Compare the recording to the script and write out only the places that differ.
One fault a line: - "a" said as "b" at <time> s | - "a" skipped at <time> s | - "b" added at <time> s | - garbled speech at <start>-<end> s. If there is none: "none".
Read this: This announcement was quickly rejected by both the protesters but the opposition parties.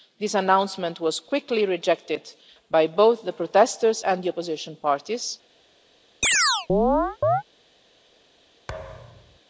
- "but" said as "and" at 4.0 s